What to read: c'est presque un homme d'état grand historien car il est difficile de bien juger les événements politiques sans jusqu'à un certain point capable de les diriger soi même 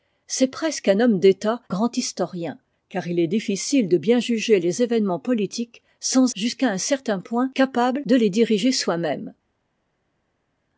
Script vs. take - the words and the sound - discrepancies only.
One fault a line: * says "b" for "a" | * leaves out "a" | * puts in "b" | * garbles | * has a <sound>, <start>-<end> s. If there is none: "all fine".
all fine